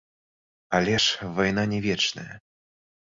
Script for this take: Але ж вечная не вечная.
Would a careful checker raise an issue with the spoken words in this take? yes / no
yes